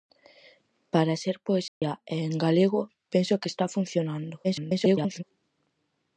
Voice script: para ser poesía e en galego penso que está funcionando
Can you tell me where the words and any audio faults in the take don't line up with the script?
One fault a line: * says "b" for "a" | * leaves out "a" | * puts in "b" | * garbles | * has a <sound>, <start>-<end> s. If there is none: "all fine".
* has a dropout, 1.7-1.8 s
* garbles